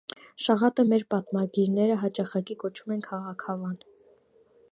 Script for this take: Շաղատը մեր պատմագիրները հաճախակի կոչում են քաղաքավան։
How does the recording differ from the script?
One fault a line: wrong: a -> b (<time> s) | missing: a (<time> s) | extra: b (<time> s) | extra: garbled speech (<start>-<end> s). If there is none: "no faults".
no faults